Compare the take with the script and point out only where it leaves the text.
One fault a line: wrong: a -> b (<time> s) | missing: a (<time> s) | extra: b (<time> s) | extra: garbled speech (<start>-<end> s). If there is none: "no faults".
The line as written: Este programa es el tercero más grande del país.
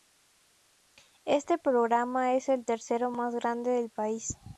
no faults